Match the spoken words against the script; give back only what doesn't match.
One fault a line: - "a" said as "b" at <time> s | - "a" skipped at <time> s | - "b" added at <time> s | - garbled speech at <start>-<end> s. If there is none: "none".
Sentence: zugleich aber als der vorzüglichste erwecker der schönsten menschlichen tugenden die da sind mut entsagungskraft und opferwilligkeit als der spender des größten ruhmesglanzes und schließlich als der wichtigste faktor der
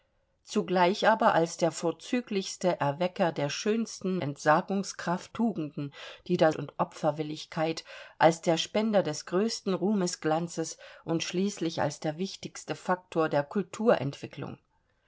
- "menschlichen" said as "entsagungskraft" at 4.2 s
- "sind mut entsagungskraft" skipped at 6.5 s